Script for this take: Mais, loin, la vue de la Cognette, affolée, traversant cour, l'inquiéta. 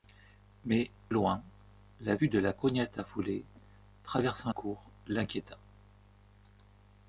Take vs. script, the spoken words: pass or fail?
pass